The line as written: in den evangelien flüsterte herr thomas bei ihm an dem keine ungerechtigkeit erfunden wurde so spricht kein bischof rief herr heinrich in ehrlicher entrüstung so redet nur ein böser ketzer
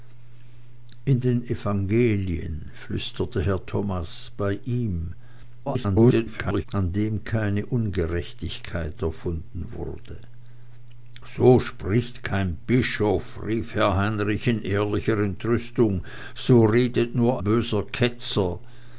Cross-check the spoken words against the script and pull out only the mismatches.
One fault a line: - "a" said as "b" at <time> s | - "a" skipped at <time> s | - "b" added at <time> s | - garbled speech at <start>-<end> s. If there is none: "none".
- garbled speech at 5.7-6.7 s
- "ein" skipped at 17.4 s